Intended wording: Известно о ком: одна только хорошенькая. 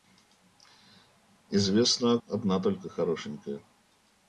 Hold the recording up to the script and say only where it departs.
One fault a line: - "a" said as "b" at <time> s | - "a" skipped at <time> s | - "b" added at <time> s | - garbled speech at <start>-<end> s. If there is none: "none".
- "ком" skipped at 2.2 s